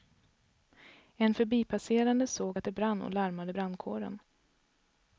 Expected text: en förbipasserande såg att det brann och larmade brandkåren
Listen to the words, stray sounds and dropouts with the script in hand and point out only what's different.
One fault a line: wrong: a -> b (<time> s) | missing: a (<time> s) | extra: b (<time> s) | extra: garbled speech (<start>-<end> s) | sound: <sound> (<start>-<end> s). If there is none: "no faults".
no faults